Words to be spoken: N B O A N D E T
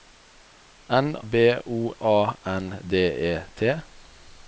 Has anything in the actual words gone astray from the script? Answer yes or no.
no